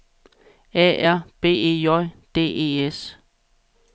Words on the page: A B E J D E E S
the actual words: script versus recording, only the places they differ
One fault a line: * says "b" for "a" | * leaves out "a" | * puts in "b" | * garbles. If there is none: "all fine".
* puts in "R"
* leaves out "E"